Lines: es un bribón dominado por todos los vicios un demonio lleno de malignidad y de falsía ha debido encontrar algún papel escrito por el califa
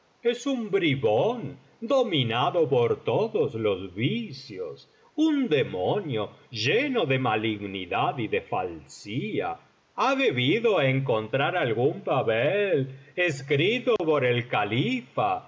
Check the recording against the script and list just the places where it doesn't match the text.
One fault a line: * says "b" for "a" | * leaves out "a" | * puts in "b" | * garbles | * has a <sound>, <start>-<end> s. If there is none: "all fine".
* has a dropout, 14.0-14.0 s